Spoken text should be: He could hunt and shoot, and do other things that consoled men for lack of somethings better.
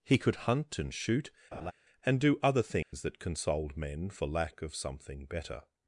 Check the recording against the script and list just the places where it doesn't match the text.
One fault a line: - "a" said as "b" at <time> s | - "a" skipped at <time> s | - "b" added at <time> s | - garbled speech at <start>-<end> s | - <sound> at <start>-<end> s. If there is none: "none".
- laugh at 1.5-1.7 s
- dropout at 2.8-2.9 s
- "somethings" said as "something" at 4.7 s